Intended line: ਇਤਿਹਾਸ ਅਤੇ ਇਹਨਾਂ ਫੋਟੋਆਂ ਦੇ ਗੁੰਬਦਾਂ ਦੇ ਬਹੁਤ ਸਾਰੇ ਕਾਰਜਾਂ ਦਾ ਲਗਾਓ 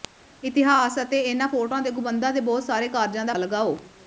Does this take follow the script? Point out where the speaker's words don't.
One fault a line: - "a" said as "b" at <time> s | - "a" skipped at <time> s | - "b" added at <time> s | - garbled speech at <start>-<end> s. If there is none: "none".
none